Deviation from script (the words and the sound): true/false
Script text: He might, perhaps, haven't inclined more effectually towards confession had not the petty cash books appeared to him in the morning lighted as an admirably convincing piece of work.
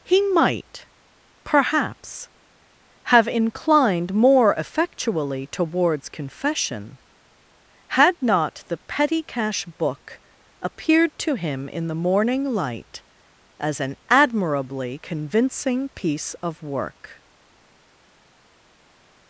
true